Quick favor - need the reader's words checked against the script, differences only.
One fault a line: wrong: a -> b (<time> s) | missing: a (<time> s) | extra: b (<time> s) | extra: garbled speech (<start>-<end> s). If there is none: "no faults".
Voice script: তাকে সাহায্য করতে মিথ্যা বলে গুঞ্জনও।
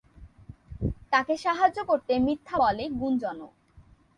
no faults